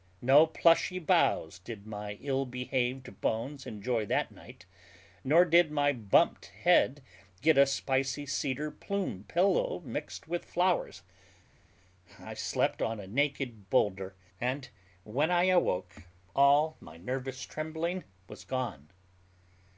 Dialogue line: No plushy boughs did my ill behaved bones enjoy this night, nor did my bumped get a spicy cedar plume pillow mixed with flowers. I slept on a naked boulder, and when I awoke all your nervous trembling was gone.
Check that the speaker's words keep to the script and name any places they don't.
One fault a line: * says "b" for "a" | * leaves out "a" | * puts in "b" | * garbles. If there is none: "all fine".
* says "that" for "this"
* puts in "head"
* says "my" for "your"